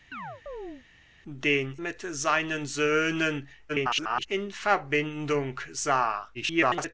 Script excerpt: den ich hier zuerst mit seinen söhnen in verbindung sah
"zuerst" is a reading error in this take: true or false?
true